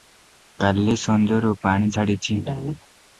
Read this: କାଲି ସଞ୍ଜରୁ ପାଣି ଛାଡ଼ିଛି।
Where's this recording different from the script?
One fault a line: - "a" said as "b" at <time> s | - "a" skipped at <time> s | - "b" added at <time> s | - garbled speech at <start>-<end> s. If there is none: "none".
none